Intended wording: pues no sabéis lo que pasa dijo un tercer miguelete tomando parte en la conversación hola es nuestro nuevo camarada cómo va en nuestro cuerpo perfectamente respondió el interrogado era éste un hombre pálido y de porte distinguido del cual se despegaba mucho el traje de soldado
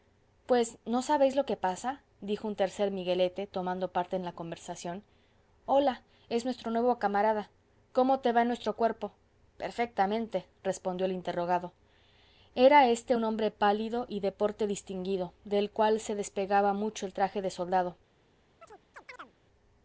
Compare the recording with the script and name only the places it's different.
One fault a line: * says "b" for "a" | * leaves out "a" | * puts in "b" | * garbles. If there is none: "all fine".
* puts in "te"